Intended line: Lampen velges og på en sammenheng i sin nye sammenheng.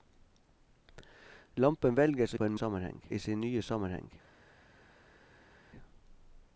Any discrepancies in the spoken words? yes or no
no